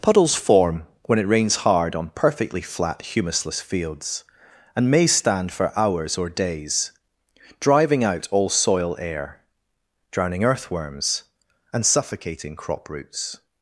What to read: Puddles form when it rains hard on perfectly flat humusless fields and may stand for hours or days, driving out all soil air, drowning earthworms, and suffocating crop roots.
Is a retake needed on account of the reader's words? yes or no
no